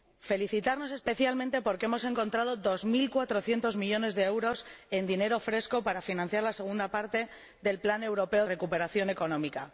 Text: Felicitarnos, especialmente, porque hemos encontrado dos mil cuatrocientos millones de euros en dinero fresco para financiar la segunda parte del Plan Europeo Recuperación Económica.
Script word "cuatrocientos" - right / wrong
right